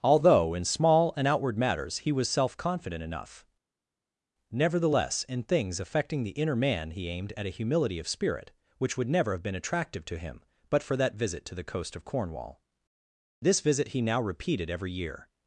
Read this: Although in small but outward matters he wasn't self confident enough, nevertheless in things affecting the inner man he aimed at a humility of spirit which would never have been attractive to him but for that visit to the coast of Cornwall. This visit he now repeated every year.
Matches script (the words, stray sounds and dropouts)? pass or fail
fail